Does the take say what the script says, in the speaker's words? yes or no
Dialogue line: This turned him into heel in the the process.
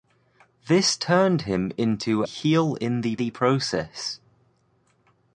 yes